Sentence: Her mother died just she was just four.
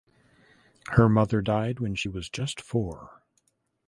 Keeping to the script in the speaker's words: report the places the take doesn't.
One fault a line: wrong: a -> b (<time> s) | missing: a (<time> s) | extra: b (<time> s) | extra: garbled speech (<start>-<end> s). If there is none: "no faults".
wrong: just -> when (1.8 s)